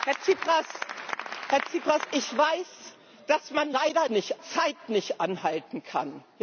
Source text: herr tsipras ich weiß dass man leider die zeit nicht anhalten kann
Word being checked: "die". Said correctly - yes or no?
no